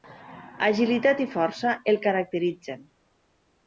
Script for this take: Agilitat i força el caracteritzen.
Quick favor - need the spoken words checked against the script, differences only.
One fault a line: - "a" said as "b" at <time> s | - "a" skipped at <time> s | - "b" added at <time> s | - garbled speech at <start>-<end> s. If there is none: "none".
none